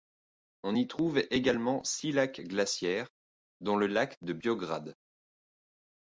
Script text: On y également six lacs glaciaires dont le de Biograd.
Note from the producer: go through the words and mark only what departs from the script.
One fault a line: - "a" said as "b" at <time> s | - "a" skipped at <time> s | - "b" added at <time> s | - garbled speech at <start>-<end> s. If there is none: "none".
- "trouve" added at 0.9 s
- "lac" added at 3.9 s